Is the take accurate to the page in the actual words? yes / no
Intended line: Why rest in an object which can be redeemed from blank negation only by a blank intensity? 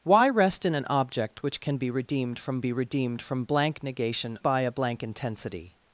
no